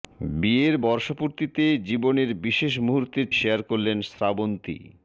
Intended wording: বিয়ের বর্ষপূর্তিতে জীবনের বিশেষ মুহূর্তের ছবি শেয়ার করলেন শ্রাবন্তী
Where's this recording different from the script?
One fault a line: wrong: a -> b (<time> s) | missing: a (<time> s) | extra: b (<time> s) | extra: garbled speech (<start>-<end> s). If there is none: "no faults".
missing: ছবি (3.3 s)